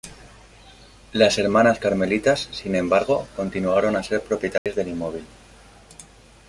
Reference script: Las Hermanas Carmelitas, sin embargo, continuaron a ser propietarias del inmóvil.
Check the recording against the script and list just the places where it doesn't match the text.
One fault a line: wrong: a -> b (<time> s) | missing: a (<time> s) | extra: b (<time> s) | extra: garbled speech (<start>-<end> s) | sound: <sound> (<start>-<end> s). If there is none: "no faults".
sound: dropout (4.6-4.7 s)